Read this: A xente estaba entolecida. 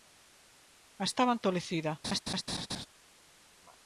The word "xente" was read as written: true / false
false